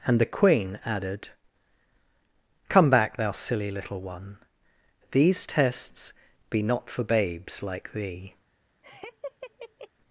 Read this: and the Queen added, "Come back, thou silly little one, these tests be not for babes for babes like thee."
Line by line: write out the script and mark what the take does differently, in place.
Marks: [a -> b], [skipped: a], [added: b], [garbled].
and the Queen added, "Come back, thou silly little one, these tests be not for babes [skipped: for babes] like thee."